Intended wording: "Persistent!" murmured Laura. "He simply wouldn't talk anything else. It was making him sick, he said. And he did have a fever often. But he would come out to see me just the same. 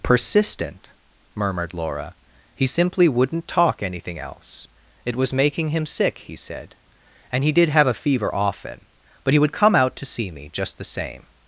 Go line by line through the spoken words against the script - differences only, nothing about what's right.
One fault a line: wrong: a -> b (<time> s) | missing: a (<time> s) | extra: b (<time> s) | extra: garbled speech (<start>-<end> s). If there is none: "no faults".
no faults